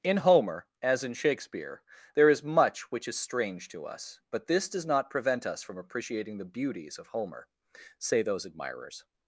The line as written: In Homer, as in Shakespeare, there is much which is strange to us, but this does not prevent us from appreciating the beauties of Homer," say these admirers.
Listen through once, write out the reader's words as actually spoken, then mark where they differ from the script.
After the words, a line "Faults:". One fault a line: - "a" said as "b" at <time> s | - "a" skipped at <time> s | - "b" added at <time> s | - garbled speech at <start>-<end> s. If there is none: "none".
In Homer, as in Shakespeare, there is much which is strange to us, but this does not prevent us from appreciating the beauties of Homer," say those admirers.
Faults:
- "these" said as "those" at 8.2 s